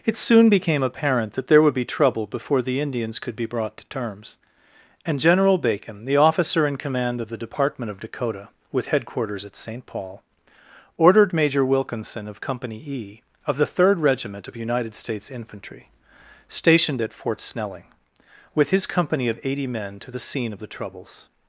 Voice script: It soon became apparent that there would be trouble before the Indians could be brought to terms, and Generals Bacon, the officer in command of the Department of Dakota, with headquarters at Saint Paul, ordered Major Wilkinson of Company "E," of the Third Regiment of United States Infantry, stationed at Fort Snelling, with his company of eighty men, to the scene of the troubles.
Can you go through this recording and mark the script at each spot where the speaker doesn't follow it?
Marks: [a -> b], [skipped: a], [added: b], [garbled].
It soon became apparent that there would be trouble before the Indians could be brought to terms, and [Generals -> General] Bacon, the officer in command of the Department of Dakota, with headquarters at Saint Paul, ordered Major Wilkinson of Company "E," of the Third Regiment of United States Infantry, stationed at Fort Snelling, with his company of eighty men, to the scene of the troubles.